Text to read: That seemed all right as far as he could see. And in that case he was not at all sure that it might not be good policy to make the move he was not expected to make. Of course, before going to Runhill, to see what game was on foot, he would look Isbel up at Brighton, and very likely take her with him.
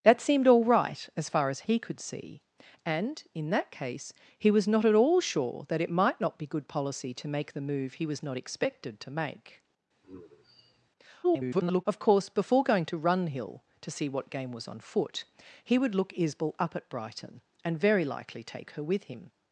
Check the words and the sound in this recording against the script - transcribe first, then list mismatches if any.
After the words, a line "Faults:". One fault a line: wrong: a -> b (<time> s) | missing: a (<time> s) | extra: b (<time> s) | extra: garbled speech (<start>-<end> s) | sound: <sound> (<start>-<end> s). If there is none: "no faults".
That seemed all right as far as he could see. And in that case he was not at all sure that it might not be good policy to make the move he was not expected to make. [garbled] Of course, before going to Runhill, to see what game was on foot, he would look Isbel up at Brighton, and very likely take her with him.
Faults:
sound: sigh (10.0-10.9 s)
extra: garbled speech (11.2-11.8 s)